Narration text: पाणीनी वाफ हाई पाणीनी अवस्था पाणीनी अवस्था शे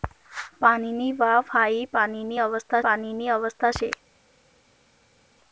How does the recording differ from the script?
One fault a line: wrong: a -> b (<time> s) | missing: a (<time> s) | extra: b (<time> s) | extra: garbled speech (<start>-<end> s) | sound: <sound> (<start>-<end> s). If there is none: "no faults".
no faults